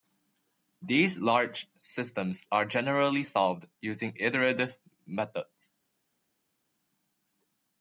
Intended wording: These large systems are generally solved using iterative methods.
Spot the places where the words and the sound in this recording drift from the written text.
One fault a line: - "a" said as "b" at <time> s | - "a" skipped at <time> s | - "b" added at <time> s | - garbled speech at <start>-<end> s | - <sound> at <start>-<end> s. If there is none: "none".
none